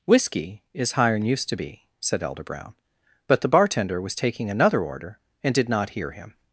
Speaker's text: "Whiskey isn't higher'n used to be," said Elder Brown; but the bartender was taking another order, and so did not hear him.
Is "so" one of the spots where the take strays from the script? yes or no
yes